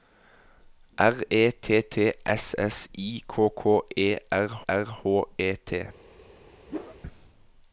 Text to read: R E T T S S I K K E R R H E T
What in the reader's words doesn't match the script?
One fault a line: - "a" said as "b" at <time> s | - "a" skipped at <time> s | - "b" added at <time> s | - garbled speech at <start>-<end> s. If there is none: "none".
none